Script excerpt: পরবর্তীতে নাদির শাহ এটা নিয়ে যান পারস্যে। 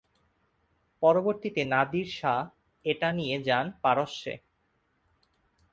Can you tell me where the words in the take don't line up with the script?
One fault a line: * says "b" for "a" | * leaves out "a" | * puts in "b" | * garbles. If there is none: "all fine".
all fine